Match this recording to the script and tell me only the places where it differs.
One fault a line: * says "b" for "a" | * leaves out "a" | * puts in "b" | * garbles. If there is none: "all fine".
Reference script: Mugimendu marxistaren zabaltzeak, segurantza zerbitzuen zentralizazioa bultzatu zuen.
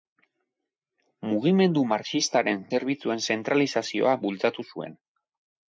* leaves out "zabaltzeak segurantza"